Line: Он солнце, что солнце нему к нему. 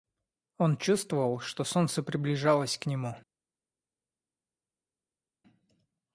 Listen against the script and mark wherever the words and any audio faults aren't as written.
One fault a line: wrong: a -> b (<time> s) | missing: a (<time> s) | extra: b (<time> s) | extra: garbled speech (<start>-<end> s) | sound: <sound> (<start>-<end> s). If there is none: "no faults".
wrong: солнце -> чувствовал (0.8 s)
wrong: нему -> приближалось (2.0 s)